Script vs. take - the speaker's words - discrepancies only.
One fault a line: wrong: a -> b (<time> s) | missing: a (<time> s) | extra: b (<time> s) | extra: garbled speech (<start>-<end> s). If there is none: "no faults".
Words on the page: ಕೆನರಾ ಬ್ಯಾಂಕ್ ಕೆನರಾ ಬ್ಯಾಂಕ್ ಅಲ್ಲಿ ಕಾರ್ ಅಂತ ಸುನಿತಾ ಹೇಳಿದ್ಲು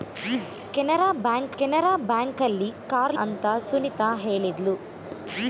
no faults